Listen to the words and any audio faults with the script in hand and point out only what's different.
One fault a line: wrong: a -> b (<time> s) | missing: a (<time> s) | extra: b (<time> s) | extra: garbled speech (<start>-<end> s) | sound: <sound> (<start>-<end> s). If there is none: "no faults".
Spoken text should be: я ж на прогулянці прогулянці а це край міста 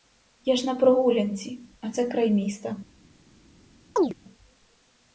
missing: прогулянці (1.6 s)
sound: chirp (4.0-4.1 s)